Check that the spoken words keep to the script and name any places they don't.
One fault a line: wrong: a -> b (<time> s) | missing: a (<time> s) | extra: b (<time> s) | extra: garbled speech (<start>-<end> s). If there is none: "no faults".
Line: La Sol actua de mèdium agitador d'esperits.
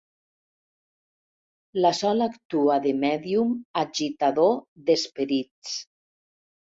no faults